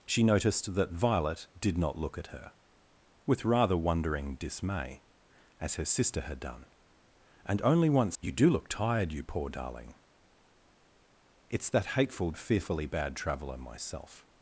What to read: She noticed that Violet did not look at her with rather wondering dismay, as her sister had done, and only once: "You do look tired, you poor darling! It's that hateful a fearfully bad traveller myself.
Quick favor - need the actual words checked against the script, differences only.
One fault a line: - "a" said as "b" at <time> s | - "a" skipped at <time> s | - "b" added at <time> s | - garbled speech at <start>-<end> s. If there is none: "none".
none